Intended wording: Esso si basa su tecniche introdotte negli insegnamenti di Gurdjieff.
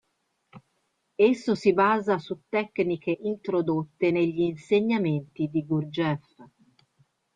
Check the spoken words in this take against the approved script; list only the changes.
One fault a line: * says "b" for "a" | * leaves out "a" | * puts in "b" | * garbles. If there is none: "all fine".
all fine